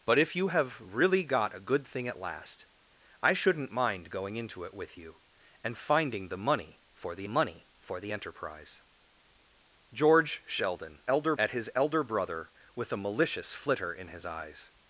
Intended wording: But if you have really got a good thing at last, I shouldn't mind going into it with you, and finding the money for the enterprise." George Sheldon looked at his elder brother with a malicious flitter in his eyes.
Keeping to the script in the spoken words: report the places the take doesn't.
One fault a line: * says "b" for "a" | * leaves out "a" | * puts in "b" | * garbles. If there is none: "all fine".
* puts in "money for the"
* says "elder" for "looked"